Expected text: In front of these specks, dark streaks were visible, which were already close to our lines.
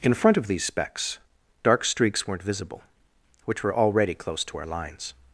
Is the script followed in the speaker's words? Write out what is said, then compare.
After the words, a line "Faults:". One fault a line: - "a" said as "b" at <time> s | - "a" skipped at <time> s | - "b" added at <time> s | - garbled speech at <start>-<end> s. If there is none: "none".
In front of these specks, dark streaks weren't visible, which were already close to our lines.
Faults:
- "were" said as "weren't" at 2.3 s